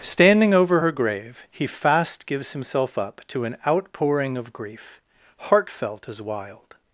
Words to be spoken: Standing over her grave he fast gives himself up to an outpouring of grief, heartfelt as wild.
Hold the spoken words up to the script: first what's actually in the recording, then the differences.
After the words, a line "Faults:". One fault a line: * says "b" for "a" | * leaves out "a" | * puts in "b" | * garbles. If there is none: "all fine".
Standing over her grave he fast gives himself up to an outpouring of grief, heartfelt as wild.
Faults:
all fine